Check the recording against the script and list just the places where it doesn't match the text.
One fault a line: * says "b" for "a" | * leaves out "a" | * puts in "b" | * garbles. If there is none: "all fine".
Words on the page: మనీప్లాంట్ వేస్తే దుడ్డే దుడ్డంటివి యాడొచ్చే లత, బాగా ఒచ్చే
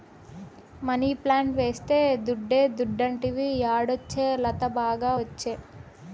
all fine